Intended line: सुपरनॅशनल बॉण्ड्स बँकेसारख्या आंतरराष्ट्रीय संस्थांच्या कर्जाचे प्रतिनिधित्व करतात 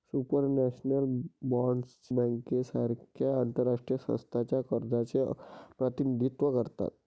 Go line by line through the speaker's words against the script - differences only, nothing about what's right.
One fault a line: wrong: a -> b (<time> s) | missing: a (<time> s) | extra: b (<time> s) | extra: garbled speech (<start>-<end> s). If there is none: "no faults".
no faults